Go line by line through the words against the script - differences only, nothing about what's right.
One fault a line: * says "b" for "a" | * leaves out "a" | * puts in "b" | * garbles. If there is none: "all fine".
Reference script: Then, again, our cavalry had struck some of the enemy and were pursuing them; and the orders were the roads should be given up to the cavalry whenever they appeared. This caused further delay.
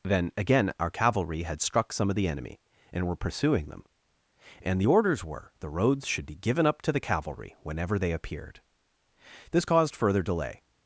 all fine